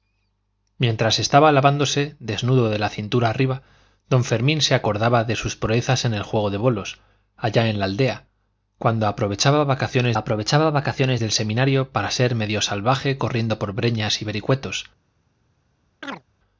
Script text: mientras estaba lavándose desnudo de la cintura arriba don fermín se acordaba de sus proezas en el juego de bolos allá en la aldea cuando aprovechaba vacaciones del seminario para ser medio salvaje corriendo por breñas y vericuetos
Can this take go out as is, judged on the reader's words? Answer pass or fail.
fail